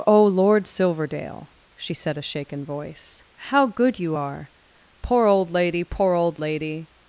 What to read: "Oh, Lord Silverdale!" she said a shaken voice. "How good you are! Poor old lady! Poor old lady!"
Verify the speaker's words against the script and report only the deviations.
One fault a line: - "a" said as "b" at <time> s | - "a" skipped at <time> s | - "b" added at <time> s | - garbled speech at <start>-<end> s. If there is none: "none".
none